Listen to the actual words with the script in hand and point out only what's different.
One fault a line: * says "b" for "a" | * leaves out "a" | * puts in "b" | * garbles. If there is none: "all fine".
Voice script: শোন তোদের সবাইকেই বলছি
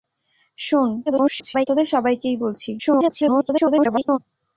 * garbles
* garbles